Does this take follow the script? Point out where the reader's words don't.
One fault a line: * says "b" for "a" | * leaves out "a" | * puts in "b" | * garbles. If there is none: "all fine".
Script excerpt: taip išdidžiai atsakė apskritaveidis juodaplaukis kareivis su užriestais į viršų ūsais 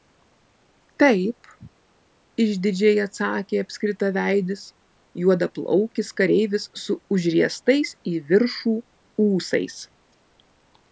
all fine